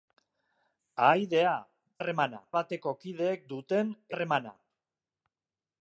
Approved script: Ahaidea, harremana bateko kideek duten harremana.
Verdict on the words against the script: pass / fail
pass